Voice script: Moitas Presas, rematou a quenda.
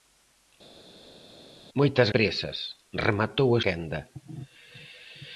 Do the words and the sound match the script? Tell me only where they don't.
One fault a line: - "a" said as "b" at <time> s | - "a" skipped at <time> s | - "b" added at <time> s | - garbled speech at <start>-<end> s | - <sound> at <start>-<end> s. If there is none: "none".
none